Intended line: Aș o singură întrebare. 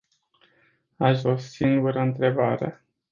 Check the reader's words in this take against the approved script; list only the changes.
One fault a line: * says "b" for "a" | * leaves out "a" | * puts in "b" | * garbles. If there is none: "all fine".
all fine